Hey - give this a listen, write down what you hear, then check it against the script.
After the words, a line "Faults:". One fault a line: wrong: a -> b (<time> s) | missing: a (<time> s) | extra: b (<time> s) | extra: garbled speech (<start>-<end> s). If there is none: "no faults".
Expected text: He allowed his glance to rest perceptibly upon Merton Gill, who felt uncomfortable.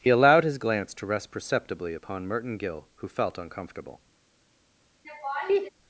He allowed his glance to rest perceptibly upon Merton Gill, who felt uncomfortable.
Faults:
no faults